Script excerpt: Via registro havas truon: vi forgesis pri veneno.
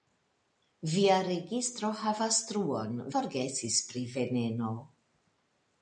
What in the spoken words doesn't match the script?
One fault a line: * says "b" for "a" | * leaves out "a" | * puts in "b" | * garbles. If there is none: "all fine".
* leaves out "vi"